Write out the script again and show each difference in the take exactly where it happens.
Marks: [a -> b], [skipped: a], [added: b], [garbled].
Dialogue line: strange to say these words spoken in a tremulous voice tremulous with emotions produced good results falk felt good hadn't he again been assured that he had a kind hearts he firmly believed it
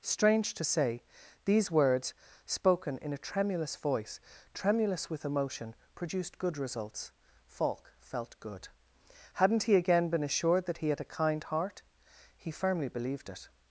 strange to say these words spoken in a tremulous voice tremulous with [emotions -> emotion] produced good results falk felt good hadn't he again been assured that he had a kind [hearts -> heart] he firmly believed it